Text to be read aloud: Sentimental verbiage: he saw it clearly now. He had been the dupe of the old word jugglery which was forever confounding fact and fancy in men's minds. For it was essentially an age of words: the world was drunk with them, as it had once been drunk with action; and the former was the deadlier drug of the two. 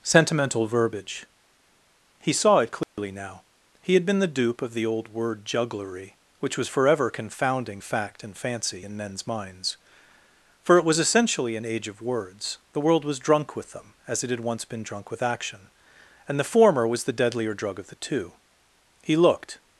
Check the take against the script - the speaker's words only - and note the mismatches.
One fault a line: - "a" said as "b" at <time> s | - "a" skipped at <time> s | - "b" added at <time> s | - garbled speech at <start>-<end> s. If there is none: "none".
- "He looked" added at 19.0 s